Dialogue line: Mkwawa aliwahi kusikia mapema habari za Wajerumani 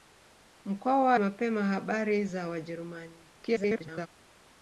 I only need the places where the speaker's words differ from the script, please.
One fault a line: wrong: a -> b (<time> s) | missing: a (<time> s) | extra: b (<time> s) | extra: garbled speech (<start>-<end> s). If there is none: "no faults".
missing: aliwahi kusikia (1.1 s)
extra: garbled speech (3.4-4.1 s)